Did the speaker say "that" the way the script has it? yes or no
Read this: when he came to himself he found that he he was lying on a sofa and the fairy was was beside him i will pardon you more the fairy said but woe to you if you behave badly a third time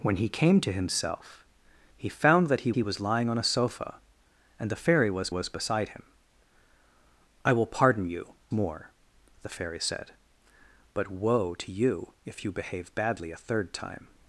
yes